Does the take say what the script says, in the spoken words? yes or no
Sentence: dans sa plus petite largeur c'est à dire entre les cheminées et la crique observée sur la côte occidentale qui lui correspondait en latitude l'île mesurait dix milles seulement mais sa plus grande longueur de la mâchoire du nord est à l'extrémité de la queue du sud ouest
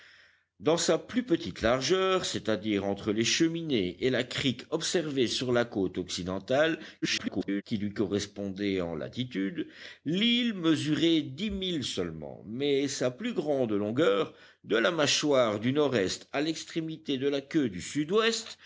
no